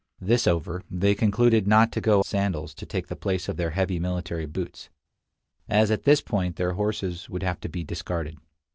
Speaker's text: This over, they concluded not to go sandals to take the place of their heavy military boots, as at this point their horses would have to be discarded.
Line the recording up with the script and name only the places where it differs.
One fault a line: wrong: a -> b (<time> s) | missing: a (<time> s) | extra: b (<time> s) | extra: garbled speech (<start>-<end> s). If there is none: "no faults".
no faults